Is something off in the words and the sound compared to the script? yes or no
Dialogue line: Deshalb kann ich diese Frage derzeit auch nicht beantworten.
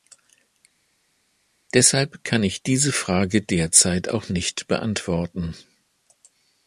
no